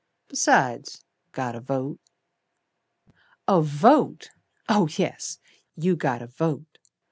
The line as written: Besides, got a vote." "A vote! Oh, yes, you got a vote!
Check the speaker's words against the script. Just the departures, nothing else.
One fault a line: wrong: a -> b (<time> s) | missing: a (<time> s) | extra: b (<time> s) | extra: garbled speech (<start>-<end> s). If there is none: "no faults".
no faults